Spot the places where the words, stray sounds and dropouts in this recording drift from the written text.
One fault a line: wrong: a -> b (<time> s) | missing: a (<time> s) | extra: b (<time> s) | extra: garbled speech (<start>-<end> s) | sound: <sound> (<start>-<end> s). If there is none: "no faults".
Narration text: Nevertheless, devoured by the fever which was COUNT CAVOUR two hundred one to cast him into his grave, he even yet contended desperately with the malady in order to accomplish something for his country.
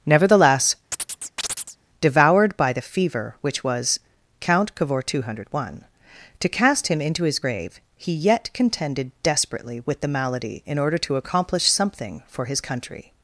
sound: chirp (0.9-1.8 s)
missing: even (8.1 s)